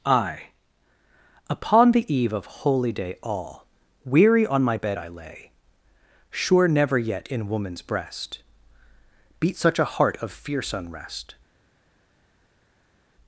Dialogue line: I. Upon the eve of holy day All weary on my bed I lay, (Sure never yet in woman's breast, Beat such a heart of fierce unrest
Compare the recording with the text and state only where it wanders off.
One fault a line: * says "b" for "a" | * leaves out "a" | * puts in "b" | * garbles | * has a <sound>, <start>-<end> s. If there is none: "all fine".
all fine